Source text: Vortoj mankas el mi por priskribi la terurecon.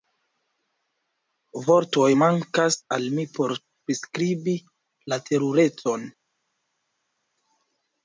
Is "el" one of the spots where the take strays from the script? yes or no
yes